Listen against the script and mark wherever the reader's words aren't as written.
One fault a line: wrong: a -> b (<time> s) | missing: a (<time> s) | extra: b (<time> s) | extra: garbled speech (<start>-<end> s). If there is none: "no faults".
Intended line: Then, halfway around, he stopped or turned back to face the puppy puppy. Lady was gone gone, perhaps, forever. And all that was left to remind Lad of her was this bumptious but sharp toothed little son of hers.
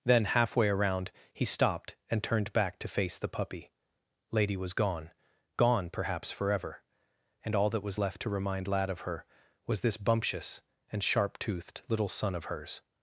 wrong: or -> and (2.1 s)
missing: puppy (3.7 s)
wrong: but -> and (10.9 s)